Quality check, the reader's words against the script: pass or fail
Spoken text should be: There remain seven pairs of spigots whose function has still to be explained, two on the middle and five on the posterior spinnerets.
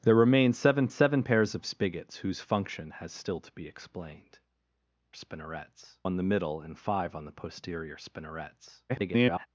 fail